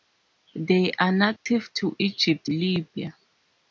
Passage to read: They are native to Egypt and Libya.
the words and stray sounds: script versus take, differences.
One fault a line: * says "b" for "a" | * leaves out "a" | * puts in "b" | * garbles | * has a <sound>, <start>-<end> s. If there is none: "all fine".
* has a dropout, 1.4-1.5 s
* leaves out "and"